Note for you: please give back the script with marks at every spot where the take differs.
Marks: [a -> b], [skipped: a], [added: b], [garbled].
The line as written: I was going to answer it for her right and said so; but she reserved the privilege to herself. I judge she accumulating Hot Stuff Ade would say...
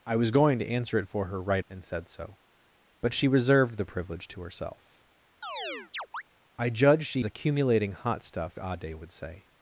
I was going to answer it for her right and said so; but she reserved the privilege to herself. I judge she accumulating Hot Stuff Ade would say...